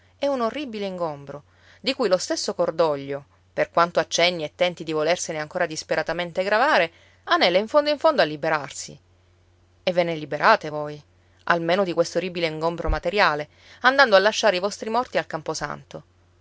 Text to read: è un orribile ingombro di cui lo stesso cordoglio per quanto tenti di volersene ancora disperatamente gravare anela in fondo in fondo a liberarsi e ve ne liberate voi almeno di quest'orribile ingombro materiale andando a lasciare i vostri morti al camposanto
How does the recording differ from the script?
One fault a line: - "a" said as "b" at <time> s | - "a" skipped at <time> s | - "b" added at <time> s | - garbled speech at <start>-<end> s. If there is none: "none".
- "accenni e" added at 4.0 s